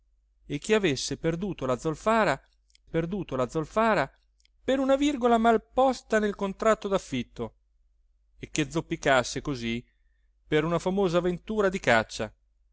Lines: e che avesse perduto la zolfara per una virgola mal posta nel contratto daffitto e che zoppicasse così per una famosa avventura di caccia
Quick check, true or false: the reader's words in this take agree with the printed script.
false